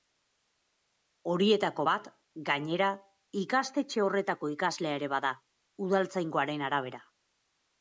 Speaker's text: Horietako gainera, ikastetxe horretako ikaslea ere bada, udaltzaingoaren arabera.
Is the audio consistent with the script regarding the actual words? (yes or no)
no